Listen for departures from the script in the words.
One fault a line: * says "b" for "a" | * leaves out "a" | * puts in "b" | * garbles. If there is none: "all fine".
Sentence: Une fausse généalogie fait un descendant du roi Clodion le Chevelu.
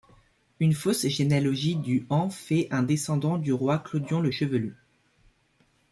* puts in "du en"